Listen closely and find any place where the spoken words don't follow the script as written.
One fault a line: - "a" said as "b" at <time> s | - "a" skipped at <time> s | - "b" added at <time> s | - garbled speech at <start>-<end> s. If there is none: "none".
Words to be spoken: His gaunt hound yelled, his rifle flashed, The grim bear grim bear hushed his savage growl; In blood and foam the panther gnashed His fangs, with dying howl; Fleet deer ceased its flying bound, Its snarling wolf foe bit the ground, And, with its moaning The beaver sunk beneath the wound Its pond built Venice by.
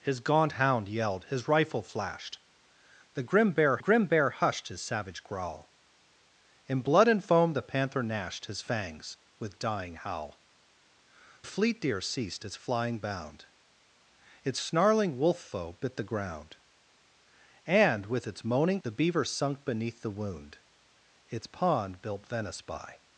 none